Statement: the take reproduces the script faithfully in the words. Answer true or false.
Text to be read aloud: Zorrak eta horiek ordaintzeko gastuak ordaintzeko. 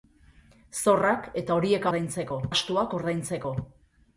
true